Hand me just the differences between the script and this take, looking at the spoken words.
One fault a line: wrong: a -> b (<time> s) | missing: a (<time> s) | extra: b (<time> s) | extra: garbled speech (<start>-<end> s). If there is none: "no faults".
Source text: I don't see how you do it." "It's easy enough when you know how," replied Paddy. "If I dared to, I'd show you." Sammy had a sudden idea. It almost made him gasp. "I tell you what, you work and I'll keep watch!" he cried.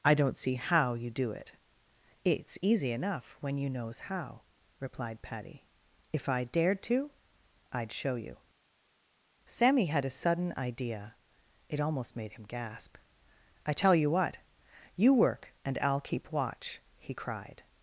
wrong: know -> knows (3.7 s)